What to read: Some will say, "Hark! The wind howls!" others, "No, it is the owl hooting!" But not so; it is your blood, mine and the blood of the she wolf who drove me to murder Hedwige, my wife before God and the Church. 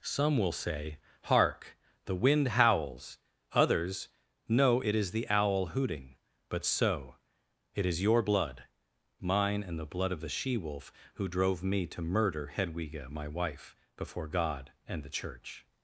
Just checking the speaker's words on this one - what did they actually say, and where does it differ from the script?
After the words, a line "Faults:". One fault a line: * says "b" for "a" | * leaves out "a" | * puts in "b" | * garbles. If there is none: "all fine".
Some will say, "Hark! The wind howls!" others, "No, it is the owl hooting!" But so; it is your blood, mine and the blood of the she wolf who drove me to murder Hedwige, my wife before God and the Church.
Faults:
* leaves out "not"